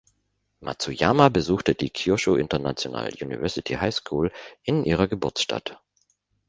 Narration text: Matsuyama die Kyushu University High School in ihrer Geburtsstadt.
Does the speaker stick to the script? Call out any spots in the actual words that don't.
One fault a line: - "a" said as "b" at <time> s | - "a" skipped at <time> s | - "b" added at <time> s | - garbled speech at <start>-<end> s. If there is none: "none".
- "besuchte" added at 1.3 s
- "International" added at 2.4 s